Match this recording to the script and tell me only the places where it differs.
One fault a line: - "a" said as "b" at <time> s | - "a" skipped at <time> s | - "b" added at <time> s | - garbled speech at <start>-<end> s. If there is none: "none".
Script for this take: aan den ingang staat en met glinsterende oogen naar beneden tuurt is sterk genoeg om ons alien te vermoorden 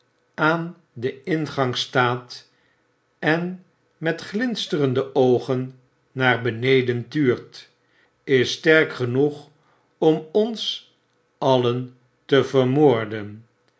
none